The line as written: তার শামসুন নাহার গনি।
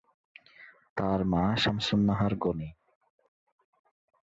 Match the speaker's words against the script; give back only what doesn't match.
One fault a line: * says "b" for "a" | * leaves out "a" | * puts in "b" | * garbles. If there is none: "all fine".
* puts in "মা"